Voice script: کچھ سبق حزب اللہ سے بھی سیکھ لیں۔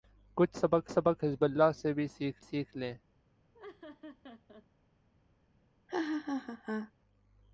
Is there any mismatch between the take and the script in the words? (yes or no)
yes